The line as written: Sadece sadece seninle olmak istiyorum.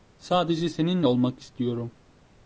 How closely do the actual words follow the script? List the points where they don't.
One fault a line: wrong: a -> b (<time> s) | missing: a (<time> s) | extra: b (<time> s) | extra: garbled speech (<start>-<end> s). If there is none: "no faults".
missing: sadece (0.7 s)